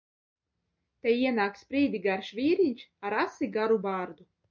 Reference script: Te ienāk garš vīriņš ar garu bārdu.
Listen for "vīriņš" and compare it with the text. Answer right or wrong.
right